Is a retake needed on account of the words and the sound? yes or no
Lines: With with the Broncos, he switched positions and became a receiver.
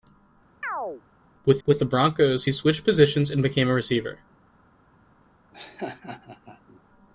yes